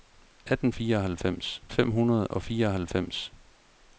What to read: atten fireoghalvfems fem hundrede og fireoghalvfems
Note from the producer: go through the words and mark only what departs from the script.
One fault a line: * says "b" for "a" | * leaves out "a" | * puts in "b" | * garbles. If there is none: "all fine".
all fine